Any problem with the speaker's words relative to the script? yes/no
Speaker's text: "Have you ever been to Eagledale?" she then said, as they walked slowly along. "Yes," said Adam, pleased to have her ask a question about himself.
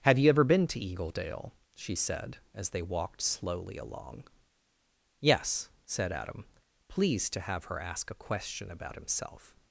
yes